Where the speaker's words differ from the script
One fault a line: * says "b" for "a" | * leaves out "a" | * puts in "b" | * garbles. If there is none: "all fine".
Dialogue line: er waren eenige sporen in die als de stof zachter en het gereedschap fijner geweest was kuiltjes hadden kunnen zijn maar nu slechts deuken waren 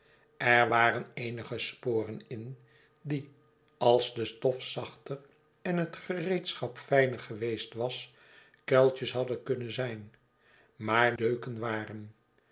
* leaves out "nu slechts"